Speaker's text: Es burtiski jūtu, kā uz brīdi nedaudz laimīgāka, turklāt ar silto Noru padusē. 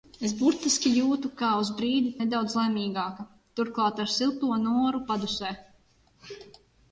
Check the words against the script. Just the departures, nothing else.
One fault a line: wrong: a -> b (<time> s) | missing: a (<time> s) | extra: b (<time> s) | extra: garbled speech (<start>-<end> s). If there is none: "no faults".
no faults